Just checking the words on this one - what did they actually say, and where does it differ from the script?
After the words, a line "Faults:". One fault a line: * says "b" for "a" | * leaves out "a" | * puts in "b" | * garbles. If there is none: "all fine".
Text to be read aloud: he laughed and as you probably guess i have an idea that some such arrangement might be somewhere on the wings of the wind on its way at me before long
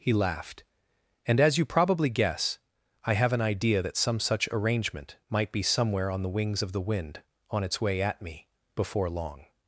he laughed and as you probably guess i have an idea that some such arrangement might be somewhere on the wings of the wind on its way at me before long
Faults:
all fine